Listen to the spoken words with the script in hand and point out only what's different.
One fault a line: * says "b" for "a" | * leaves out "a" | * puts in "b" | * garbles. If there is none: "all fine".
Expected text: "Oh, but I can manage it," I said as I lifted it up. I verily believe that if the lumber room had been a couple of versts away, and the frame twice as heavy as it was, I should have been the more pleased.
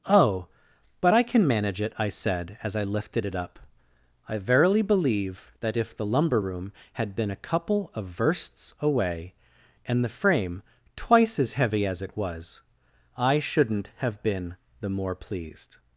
* says "shouldn't" for "should"